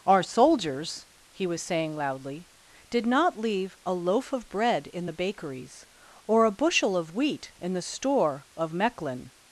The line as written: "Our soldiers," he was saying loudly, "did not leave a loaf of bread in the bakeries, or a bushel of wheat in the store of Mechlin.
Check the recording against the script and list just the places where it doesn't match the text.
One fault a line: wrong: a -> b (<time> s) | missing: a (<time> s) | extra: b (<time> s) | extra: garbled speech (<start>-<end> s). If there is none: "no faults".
no faults